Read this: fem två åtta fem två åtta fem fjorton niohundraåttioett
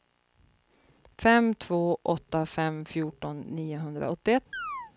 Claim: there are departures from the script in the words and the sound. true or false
true